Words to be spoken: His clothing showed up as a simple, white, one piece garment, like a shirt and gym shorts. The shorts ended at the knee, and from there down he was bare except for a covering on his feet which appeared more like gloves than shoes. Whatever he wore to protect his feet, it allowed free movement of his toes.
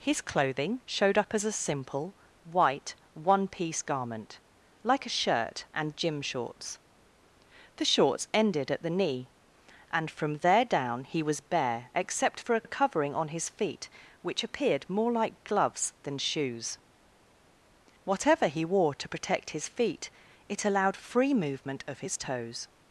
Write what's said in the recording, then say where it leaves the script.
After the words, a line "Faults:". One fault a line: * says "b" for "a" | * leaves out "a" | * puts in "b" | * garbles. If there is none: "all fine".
His clothing showed up as a simple, white, one piece garment, like a shirt and gym shorts. The shorts ended at the knee, and from there down he was bare except for a a covering on his feet which appeared more like gloves than shoes. Whatever he wore to protect his feet, it allowed free movement of his toes.
Faults:
* puts in "a"